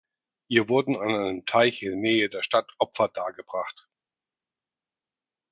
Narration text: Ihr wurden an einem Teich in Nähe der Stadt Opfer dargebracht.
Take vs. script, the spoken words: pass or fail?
pass